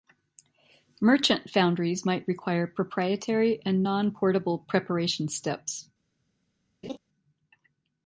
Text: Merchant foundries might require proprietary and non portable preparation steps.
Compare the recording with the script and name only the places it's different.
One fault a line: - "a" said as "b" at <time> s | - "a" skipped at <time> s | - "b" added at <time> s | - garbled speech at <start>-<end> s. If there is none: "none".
none